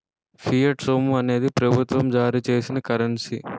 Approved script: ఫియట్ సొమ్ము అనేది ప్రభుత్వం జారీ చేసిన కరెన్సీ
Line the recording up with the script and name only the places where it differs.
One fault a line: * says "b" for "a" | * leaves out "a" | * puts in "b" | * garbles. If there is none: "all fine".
all fine